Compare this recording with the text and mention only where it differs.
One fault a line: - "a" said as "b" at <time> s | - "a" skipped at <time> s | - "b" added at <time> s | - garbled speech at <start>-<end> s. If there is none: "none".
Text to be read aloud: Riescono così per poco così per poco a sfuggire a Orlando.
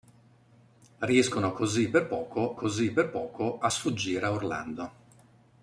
none